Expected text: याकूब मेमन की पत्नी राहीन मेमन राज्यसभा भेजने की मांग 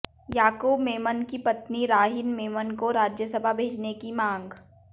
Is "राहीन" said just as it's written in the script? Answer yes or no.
yes